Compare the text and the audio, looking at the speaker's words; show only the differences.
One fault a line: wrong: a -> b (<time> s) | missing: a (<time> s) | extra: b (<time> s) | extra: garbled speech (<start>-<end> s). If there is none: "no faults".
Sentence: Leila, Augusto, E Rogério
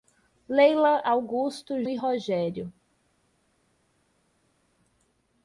no faults